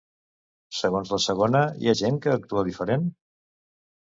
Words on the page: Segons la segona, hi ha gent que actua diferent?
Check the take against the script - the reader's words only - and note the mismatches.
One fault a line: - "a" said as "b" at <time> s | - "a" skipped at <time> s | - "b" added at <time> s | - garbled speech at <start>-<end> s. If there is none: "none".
none